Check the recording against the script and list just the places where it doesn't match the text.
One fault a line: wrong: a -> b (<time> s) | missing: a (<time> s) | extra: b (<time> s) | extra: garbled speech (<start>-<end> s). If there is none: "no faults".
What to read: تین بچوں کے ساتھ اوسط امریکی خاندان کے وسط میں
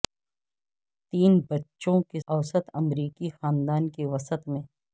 missing: ساتھ (2.2 s)